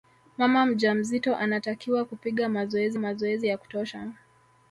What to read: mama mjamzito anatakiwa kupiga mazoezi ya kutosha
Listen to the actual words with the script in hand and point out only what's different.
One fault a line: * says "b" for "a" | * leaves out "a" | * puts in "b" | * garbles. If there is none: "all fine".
* puts in "mazoezi"